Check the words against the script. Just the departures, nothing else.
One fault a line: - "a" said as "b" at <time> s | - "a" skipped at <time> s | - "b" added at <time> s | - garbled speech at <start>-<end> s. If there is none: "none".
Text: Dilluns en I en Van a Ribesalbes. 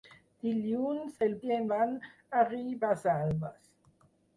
none